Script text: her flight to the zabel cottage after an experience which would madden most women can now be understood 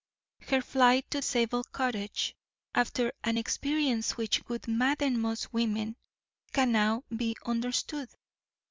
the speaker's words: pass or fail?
fail